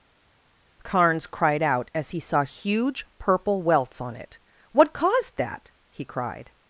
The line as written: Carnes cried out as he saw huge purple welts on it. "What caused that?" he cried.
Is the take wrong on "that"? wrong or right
right